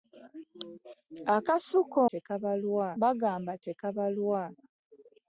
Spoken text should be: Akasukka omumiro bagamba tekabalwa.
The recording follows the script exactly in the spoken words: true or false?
false